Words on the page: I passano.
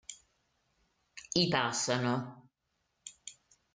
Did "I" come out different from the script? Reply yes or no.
no